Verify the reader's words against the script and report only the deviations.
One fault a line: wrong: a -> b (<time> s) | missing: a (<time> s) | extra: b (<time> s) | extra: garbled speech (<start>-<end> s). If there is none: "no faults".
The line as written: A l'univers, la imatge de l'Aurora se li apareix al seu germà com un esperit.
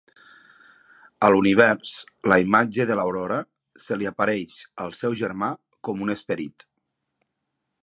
no faults